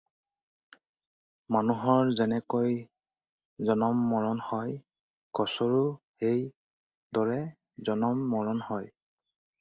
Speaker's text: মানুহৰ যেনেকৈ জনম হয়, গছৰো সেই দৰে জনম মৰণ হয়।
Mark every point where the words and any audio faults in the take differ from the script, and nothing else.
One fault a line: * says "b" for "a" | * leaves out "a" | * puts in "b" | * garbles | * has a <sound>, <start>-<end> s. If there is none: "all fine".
* puts in "মৰণ"